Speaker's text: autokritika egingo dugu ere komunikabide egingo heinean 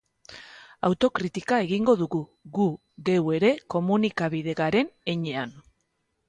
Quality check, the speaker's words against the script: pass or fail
fail